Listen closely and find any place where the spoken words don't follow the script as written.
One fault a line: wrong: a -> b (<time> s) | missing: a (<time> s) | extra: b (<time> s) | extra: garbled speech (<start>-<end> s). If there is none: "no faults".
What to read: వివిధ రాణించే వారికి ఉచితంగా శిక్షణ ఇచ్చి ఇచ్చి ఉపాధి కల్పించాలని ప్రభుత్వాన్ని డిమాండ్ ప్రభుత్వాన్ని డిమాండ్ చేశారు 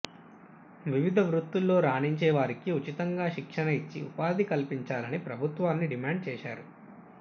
extra: వృత్తుల్లో (1.3 s)
missing: ఇచ్చి (4.0 s)
missing: ప్రభుత్వాన్ని డిమాండ్ (6.2 s)